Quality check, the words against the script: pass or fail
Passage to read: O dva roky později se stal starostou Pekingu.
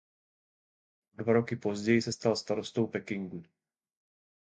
pass